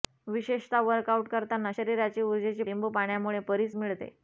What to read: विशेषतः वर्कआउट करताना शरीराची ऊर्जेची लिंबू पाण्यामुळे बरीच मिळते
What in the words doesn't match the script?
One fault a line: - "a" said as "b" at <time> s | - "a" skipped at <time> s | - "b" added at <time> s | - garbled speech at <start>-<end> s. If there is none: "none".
none